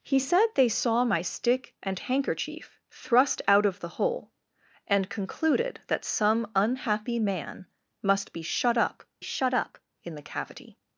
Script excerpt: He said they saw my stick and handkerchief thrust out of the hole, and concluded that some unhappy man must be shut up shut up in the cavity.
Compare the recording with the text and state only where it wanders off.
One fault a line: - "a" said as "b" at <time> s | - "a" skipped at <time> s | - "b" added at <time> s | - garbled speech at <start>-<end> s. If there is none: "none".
none